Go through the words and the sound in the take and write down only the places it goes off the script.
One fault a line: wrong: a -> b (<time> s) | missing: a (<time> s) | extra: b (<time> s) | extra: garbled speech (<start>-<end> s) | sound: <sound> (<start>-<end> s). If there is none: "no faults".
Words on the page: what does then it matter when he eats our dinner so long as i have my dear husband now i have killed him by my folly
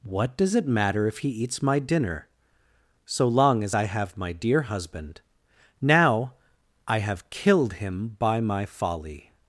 missing: then (0.6 s)
wrong: when -> if (1.1 s)
wrong: our -> my (1.6 s)